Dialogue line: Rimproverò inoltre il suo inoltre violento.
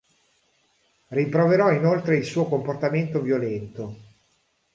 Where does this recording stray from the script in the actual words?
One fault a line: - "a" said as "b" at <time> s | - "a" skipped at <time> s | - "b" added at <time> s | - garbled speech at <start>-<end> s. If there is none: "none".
- "inoltre" said as "comportamento" at 2.4 s